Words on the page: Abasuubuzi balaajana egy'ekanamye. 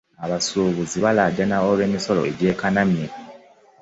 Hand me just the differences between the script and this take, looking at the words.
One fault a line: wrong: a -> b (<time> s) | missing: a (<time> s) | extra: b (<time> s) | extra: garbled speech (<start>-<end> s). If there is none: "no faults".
extra: olw'emisolo (1.7 s)